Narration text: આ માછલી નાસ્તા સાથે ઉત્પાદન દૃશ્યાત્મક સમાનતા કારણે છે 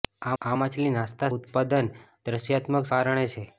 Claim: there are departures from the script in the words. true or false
true